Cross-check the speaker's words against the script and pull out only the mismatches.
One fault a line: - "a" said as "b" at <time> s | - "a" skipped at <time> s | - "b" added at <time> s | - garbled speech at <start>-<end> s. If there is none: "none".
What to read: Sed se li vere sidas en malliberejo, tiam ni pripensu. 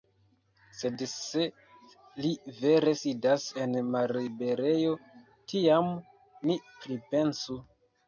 none